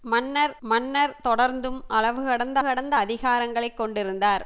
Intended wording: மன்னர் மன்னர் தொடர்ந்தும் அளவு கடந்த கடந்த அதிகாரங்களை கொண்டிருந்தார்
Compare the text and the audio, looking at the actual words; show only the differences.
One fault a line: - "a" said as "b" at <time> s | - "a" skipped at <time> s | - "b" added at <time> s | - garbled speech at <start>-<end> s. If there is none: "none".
none